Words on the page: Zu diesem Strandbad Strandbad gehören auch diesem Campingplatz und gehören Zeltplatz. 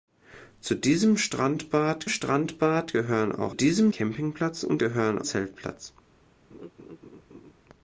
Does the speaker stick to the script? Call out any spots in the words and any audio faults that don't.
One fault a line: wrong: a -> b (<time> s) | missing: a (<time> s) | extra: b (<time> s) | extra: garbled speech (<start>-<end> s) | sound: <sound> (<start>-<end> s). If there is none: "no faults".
sound: laugh (6.5-7.5 s)